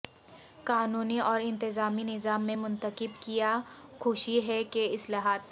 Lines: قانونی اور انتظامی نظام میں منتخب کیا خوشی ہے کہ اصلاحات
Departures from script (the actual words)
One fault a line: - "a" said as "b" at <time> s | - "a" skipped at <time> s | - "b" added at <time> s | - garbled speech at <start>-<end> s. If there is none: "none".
none